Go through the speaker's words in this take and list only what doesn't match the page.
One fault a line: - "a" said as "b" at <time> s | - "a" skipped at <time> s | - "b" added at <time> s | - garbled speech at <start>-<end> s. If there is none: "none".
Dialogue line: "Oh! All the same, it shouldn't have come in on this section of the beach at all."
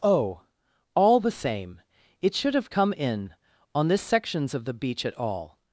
- "shouldn't" said as "should" at 2.4 s
- "section" said as "sections" at 4.0 s